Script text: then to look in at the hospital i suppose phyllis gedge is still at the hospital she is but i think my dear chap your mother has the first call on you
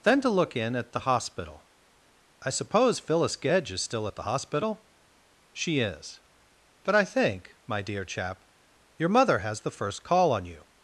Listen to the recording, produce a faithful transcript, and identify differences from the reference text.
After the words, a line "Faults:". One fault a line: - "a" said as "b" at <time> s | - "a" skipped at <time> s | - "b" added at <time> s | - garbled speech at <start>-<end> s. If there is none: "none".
then to look in at the hospital i suppose phyllis gedge is still at the hospital she is but i think my dear chap your mother has the first call on you
Faults:
none